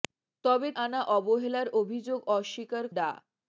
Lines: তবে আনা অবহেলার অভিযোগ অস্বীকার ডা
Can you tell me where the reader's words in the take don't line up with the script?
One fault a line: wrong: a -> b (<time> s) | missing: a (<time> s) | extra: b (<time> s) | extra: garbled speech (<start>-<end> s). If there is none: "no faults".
no faults